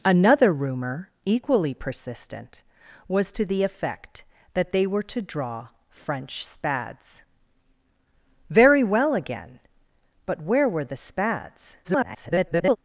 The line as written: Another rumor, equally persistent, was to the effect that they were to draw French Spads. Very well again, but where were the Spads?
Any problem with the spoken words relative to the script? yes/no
yes